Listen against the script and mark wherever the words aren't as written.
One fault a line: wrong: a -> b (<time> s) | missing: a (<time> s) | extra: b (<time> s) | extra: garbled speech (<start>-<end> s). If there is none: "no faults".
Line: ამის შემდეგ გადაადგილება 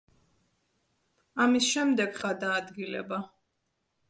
no faults